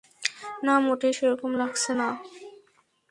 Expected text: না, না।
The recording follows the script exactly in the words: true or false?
false